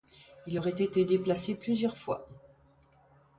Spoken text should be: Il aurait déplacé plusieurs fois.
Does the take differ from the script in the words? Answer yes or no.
yes